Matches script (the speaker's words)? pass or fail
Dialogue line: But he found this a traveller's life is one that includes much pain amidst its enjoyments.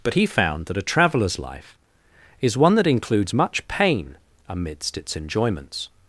fail